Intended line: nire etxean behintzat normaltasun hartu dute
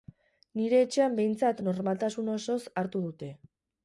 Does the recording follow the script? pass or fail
fail